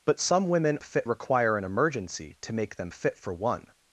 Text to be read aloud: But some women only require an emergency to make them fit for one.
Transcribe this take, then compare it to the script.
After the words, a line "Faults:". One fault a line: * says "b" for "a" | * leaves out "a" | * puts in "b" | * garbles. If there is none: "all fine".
But some women fit require an emergency to make them fit for one.
Faults:
* says "fit" for "only"